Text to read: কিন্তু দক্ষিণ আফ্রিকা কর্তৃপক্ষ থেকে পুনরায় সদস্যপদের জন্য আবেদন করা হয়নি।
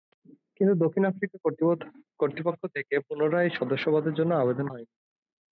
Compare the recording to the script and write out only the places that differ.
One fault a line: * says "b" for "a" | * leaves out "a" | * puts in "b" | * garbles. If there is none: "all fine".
* leaves out "করা"